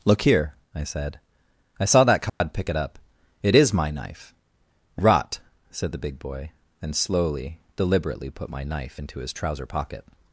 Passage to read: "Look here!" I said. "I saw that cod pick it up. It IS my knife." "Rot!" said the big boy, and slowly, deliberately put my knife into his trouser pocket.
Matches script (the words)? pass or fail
pass